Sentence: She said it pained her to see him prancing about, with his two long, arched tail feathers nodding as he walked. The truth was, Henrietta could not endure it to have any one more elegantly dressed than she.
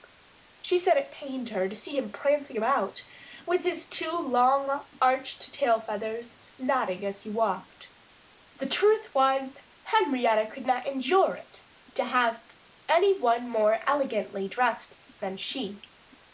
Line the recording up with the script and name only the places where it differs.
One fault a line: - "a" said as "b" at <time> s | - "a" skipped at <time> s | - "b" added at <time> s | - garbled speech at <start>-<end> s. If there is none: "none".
none